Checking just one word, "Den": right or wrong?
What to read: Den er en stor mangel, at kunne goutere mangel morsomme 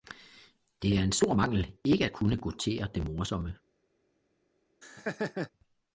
wrong